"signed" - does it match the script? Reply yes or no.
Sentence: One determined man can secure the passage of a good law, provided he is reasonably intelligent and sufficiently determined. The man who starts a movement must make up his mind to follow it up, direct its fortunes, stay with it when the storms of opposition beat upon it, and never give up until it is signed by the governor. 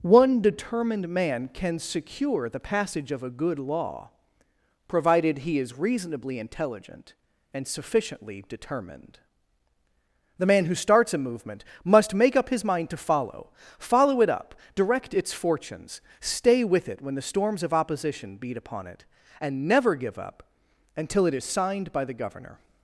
yes